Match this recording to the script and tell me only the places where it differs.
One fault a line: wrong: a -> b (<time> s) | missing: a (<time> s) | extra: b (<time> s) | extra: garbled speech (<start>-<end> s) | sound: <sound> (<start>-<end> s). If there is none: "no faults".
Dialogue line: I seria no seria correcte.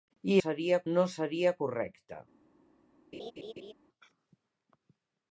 sound: laugh (3.1-3.7 s)